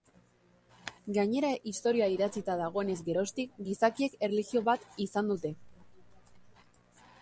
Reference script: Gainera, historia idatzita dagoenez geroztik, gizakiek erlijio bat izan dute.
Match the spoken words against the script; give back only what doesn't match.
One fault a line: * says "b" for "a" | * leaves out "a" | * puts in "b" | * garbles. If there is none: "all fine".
all fine